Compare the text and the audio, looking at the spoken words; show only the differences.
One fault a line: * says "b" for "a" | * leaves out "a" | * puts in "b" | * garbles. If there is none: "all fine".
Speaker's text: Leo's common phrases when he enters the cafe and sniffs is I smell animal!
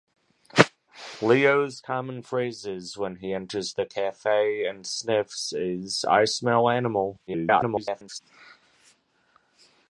* garbles